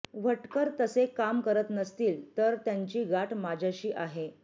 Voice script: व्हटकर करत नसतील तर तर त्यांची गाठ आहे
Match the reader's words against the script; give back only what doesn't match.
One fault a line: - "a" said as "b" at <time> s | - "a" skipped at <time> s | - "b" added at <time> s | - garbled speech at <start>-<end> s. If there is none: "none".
- "तसे काम" added at 0.8 s
- "तर" skipped at 2.5 s
- "माझ्याशी" added at 3.3 s